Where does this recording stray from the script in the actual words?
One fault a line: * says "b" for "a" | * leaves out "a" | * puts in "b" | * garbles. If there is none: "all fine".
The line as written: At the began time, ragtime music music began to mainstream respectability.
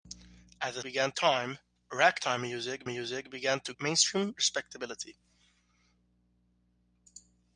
all fine